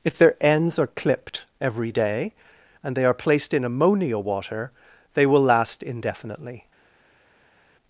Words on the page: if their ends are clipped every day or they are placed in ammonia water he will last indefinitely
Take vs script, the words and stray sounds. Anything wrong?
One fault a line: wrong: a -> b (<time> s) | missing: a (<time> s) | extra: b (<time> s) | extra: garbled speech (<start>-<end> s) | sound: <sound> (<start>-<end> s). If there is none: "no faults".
wrong: or -> and (2.8 s)
wrong: he -> they (5.1 s)